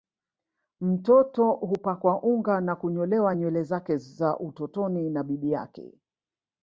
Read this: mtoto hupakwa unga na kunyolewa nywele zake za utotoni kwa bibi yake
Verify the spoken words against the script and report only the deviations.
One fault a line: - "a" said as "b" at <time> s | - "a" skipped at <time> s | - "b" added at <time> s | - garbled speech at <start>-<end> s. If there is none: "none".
- "kwa" said as "na" at 5.1 s